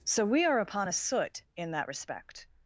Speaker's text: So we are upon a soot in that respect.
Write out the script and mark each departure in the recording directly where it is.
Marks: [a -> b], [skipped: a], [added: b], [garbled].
So we are upon a soot in that respect.